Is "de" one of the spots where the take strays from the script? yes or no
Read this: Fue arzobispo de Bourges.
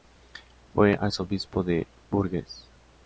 no